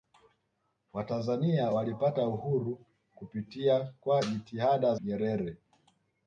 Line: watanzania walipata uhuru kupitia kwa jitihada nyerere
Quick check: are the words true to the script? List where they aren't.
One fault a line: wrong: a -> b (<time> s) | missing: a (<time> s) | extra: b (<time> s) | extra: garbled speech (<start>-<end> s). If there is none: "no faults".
no faults